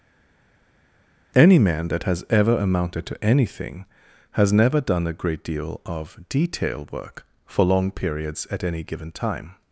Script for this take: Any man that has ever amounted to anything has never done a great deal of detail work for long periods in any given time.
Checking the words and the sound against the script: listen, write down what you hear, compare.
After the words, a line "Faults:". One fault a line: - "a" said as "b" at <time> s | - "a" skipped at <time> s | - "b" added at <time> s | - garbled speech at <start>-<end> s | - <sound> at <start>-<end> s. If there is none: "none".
Any man that has ever amounted to anything has never done a great deal of detail work for long periods at any given time.
Faults:
- "in" said as "at" at 8.5 s